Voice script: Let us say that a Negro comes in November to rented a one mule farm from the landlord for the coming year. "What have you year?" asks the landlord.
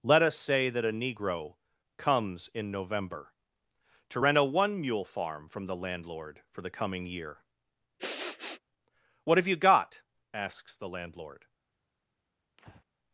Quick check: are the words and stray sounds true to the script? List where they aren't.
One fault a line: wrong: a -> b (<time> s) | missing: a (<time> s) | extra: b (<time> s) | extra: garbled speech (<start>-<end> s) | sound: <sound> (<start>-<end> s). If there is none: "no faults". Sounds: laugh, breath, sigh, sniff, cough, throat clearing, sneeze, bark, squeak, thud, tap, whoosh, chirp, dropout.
wrong: rented -> rent (4.2 s)
sound: sniff (8.0-8.6 s)
wrong: year -> got (9.6 s)
sound: breath (12.6-12.8 s)